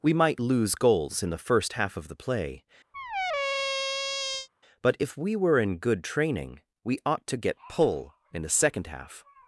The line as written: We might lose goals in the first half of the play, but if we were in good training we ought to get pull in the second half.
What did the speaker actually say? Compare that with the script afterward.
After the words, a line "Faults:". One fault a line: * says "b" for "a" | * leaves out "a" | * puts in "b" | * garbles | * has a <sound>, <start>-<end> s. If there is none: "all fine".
We might lose goals in the first half of the play, but if we were in good training we ought to get pull in the second half.
Faults:
* has a squeak, 2.9-4.5 s